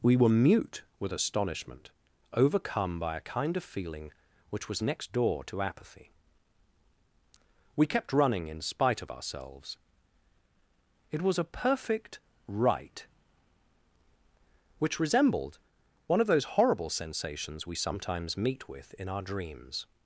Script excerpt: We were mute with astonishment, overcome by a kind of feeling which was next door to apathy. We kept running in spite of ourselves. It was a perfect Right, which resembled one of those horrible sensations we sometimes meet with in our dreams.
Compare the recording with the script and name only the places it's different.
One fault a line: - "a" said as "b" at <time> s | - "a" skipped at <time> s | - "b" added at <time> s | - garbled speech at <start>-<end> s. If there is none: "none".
none